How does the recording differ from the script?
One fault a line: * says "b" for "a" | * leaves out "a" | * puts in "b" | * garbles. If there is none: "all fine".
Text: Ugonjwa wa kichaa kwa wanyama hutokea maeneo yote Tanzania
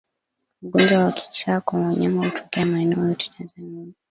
all fine